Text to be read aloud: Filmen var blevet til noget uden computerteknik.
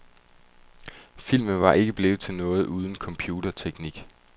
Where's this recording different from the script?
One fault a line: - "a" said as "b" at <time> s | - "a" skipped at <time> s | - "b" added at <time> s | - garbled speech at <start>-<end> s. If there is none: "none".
- "ikke" added at 1.7 s